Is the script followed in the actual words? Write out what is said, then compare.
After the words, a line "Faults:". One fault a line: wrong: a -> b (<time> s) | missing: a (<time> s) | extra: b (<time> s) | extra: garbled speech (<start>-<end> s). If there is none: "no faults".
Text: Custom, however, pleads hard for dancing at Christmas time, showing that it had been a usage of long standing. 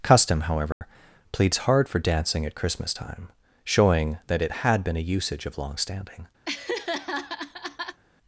Custom, however, pleads hard for dancing at Christmas time, showing that it had been a usage of long standing.
Faults:
no faults